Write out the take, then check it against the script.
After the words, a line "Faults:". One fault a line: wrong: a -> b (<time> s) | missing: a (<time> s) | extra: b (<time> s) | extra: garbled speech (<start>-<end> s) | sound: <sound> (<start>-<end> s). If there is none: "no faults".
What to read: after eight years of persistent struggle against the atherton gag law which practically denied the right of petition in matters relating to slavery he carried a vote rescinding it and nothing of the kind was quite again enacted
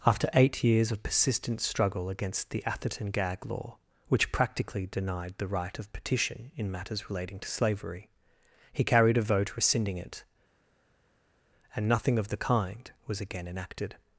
after eight years of persistent struggle against the atherton gag law which practically denied the right of petition in matters relating to slavery he carried a vote rescinding it and nothing of the kind was again enacted
Faults:
missing: quite (13.2 s)